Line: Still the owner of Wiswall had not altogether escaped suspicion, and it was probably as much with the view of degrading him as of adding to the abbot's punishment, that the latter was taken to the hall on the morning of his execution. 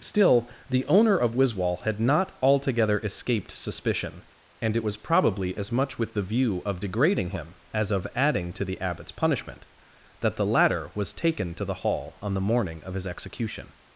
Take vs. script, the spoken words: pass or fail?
pass